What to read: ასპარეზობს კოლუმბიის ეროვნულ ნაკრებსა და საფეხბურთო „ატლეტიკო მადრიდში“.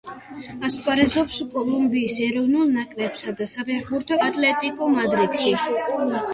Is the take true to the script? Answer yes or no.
yes